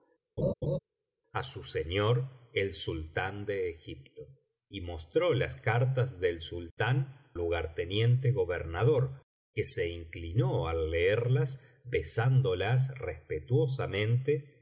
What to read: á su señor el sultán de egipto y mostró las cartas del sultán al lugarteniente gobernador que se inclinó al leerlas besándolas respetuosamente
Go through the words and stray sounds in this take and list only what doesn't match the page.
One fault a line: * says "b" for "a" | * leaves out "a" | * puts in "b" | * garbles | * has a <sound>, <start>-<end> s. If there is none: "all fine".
* has a laugh, 0.4-0.8 s
* leaves out "al"